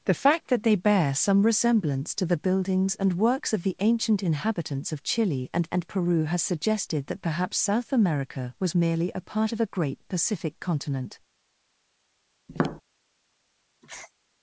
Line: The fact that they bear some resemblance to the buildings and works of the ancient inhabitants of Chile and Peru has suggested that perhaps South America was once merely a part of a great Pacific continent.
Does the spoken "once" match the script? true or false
false